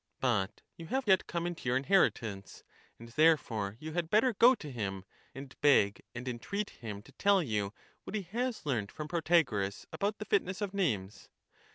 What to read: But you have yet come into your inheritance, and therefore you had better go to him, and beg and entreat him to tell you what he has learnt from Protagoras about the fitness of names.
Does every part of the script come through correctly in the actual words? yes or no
yes